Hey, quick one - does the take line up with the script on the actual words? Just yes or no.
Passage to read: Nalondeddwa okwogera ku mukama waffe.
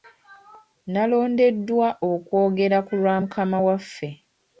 no